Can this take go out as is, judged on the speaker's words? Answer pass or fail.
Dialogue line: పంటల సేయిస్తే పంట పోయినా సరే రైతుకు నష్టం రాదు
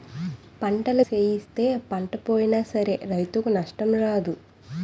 pass